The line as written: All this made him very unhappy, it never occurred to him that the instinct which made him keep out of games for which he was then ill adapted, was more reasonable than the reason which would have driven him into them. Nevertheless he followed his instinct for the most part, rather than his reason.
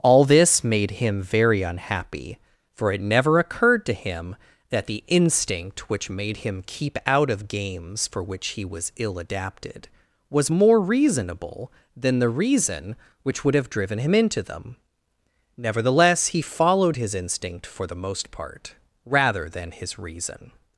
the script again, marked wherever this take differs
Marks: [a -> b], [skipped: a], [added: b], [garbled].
All this made him very unhappy, [added: for] it never occurred to him that the instinct which made him keep out of games for which he was [skipped: then] ill adapted, was more reasonable than the reason which would have driven him into them. Nevertheless he followed his instinct for the most part, rather than his reason.